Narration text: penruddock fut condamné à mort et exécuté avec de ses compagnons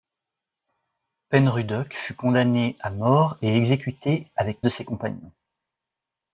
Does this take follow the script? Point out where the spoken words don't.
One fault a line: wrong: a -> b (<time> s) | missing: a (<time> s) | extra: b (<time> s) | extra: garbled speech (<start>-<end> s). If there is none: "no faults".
no faults